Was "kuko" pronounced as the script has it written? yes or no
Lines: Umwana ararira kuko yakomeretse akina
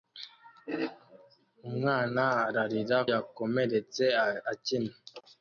no